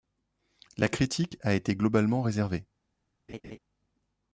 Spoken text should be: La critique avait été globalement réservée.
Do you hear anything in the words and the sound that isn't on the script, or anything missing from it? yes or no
yes